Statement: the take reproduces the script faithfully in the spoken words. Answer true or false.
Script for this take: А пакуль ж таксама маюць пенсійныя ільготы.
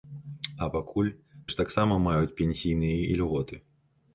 true